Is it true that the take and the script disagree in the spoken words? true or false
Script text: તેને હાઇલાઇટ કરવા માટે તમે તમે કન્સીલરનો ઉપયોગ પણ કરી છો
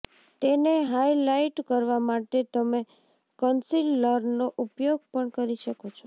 true